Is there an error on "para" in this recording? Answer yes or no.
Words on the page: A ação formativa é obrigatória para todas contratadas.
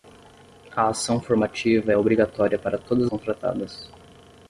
no